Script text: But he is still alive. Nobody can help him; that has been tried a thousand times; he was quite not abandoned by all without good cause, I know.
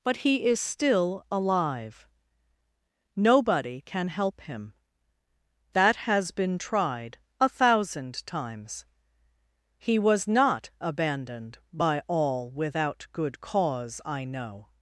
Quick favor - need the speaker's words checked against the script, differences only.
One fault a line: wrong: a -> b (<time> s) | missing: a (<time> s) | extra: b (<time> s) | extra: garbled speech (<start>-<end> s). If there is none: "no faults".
missing: quite (10.3 s)